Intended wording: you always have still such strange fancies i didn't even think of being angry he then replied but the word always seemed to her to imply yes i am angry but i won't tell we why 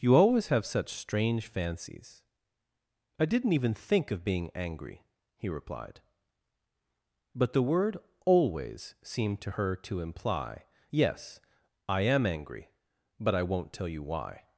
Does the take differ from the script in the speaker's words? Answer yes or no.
yes